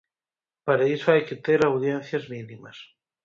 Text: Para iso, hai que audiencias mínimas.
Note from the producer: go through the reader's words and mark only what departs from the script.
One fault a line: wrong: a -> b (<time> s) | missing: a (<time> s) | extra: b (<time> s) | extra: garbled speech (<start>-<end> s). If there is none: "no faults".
extra: ter (1.4 s)